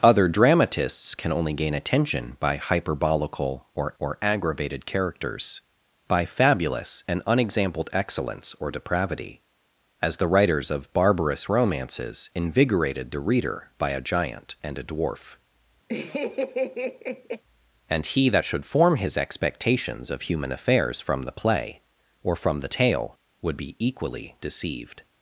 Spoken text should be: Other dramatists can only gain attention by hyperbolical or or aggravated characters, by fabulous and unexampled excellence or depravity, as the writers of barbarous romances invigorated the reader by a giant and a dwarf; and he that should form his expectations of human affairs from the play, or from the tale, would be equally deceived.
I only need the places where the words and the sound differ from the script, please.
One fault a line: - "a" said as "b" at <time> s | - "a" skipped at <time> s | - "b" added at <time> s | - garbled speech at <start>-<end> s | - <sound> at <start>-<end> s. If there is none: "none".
- laugh at 15.9-17.4 s